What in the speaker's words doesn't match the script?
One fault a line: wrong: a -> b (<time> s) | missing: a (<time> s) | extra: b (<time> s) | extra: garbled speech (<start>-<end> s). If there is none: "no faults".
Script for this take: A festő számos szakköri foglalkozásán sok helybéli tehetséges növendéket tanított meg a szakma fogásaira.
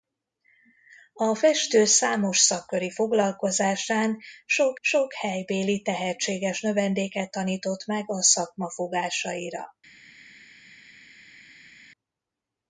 extra: sok (4.8 s)